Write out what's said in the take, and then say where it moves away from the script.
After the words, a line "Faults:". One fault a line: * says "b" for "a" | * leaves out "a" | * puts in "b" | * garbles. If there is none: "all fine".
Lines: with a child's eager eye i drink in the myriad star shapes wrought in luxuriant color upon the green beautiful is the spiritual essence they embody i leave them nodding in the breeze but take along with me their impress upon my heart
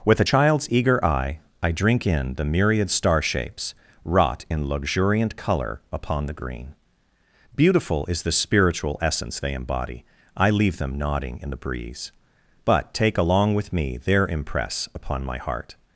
with a child's eager eye i drink in the myriad star shapes wrought in luxuriant color upon the green beautiful is the spiritual essence they embody i leave them nodding in the breeze but take along with me their impress upon my heart
Faults:
all fine